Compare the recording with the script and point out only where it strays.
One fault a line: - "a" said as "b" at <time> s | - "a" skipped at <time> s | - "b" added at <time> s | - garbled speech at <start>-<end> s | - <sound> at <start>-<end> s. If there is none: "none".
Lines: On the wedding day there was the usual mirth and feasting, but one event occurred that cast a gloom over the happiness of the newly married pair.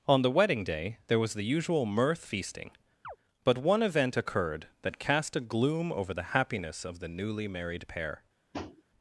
- "and" skipped at 2.3 s
- chirp at 3.0-3.2 s
- tap at 8.5-8.8 s